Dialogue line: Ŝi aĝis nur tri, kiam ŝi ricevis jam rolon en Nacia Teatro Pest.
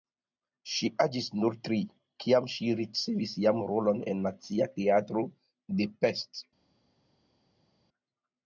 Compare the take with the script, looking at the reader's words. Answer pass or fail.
fail